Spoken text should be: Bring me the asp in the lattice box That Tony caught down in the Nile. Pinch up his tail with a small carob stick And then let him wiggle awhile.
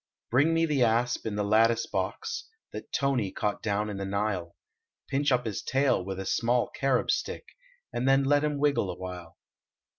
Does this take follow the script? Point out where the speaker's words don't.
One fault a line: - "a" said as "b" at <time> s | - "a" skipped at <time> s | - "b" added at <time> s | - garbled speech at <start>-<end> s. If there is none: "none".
none